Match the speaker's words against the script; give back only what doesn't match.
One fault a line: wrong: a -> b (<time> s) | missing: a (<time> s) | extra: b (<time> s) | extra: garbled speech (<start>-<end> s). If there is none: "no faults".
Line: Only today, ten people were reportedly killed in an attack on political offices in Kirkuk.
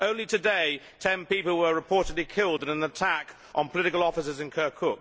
no faults